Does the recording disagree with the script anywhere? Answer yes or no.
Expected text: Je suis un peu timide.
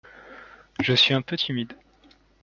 no